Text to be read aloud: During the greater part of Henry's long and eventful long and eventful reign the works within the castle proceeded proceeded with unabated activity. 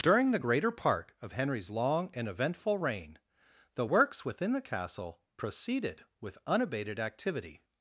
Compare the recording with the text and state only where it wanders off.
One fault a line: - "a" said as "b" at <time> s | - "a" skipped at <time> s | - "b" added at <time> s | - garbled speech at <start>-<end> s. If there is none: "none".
- "long and eventful" skipped at 2.8 s
- "proceeded" skipped at 6.0 s